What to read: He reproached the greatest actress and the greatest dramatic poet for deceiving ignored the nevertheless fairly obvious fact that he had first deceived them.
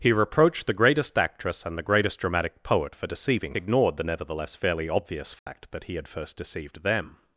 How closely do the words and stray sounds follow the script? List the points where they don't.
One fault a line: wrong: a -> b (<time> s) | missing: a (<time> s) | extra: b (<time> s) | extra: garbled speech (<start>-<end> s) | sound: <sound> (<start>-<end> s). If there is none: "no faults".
sound: dropout (5.4-5.5 s)